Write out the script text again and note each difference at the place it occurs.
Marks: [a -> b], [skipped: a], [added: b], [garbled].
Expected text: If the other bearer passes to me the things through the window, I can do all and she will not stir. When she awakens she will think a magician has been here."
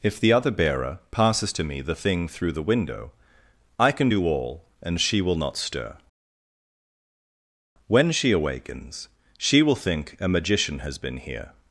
If the other bearer passes to me the [things -> thing] through the window, I can do all and she will not stir. When she awakens she will think a magician has been here."